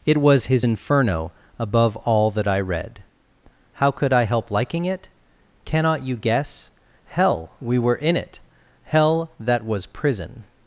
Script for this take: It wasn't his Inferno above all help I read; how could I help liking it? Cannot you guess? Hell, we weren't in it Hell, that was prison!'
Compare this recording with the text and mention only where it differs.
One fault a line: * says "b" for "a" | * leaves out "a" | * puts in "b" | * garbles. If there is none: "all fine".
* says "was" for "wasn't"
* says "that" for "help"
* says "were" for "weren't"